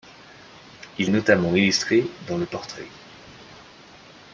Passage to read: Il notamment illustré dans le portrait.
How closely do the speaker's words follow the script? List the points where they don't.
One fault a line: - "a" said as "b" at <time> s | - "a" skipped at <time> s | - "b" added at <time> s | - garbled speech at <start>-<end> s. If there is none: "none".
none